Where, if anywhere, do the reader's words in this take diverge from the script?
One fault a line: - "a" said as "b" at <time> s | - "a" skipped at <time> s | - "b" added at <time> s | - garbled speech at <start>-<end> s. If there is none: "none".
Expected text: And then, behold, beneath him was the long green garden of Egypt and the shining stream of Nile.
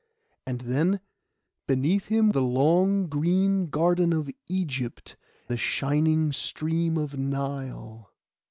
- "behold" skipped at 1.0 s
- "was" skipped at 2.3 s
- "and" skipped at 5.1 s